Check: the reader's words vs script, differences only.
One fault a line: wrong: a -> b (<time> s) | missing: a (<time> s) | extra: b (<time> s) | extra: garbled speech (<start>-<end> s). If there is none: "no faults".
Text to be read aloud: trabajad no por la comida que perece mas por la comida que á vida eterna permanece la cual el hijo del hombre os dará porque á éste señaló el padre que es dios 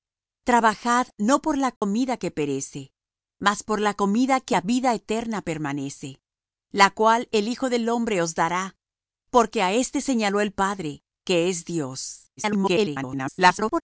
extra: garbled speech (12.4-13.8 s)